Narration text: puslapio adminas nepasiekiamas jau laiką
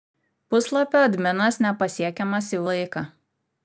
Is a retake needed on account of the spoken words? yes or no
no